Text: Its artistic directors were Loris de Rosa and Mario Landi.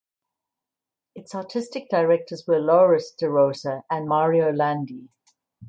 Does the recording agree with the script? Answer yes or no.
yes